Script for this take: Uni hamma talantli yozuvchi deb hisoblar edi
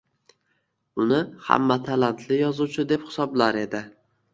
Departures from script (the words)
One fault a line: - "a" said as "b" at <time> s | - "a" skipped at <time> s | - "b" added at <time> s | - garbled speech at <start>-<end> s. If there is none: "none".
none